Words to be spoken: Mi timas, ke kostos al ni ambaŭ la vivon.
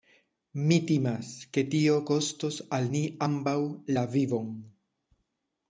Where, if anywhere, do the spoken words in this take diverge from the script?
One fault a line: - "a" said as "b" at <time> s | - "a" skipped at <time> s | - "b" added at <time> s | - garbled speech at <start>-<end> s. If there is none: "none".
- "tio" added at 1.7 s